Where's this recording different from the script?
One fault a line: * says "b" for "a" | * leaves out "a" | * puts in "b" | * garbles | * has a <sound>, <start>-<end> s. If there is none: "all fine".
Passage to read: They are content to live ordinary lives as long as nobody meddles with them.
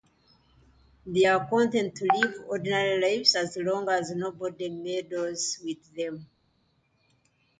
all fine